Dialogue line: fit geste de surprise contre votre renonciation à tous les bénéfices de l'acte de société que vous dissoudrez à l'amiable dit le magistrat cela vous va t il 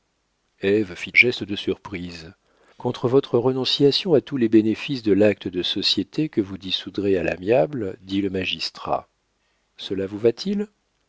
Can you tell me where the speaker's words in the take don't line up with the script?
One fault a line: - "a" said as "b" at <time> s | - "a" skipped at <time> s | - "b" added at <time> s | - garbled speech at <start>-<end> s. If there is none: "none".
none